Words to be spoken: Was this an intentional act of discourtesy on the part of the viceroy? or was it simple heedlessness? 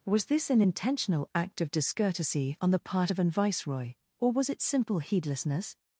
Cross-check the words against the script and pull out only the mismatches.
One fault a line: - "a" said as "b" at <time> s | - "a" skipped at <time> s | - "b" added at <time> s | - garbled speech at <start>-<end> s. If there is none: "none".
- "the" said as "an" at 3.2 s